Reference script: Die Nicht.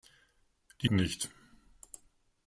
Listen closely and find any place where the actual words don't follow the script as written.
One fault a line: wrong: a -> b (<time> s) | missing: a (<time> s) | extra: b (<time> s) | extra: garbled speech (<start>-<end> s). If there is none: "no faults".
no faults